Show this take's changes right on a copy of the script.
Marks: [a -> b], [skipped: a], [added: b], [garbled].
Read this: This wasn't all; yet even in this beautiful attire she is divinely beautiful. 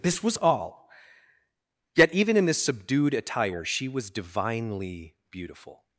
This [wasn't -> was] all; yet even in this [beautiful -> subdued] attire she [is -> was] divinely beautiful.